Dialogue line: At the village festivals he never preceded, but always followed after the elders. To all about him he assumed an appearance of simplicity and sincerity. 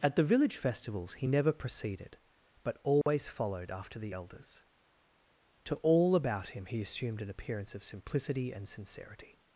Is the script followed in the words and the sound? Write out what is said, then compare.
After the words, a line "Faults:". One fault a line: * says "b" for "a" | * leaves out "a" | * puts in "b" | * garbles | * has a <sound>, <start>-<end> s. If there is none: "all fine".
At the village festivals he never preceded, but always followed after the elders. To all about him he assumed an appearance of simplicity and sincerity.
Faults:
* has a dropout, 3.0-3.1 s